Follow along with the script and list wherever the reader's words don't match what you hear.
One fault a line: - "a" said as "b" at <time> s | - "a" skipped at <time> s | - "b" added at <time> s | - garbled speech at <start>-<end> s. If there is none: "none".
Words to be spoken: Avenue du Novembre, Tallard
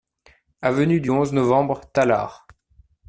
- "onze" added at 1.1 s